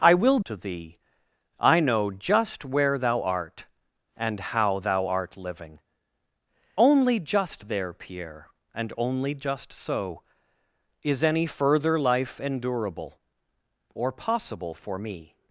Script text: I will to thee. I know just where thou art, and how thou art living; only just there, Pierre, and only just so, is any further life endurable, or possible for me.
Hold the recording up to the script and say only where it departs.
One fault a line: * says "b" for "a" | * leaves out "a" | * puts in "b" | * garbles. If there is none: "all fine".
all fine